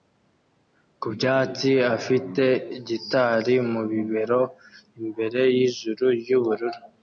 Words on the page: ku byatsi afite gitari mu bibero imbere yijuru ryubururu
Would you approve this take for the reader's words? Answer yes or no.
yes